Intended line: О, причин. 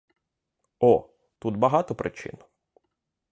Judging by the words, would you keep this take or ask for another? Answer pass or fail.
fail